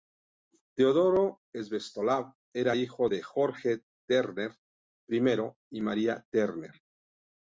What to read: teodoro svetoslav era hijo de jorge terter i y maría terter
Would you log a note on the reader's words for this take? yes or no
no